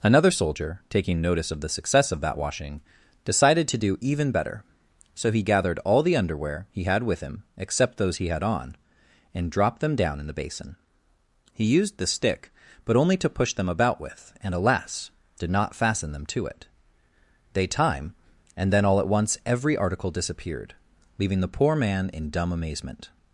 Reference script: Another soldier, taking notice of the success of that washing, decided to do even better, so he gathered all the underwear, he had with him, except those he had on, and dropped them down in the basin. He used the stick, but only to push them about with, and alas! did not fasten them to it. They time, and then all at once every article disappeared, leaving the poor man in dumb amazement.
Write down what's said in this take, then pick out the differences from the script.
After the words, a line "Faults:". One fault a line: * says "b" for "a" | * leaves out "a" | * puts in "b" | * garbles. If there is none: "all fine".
Another soldier, taking notice of the success of that washing, decided to do even better, so he gathered all the underwear, he had with him, except those he had on, and dropped them down in the basin. He used the stick, but only to push them about with, and alas! did not fasten them to it. They time, and then all at once every article disappeared, leaving the poor man in dumb amazement.
Faults:
all fine